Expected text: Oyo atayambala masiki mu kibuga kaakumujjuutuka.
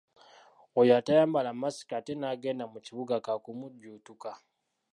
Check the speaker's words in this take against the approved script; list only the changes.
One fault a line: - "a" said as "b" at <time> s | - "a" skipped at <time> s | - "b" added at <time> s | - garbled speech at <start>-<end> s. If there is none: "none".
- "ate n'agenda" added at 2.0 s